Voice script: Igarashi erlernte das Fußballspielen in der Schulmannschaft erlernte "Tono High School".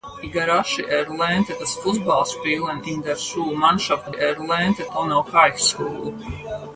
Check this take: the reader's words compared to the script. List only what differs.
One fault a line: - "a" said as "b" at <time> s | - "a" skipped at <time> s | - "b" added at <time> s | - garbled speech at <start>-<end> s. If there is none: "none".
none